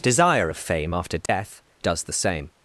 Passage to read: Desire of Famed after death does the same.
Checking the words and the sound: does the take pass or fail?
fail